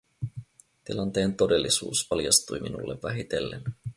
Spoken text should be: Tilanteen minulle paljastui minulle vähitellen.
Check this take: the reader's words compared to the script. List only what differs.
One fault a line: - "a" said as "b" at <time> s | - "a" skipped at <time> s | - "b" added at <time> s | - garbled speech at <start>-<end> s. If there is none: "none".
- "minulle" said as "todellisuus" at 1.4 s